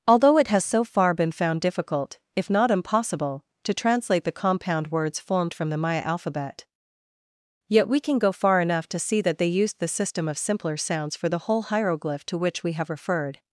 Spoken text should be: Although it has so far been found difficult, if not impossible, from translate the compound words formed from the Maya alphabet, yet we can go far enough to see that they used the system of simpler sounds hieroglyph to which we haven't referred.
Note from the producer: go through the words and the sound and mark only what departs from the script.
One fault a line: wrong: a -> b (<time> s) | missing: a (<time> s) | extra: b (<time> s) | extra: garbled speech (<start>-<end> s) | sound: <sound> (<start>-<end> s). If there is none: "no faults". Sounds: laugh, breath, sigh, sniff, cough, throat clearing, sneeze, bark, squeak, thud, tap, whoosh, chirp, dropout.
wrong: from -> to (3.6 s)
extra: for the whole (11.2 s)
wrong: haven't -> have (12.7 s)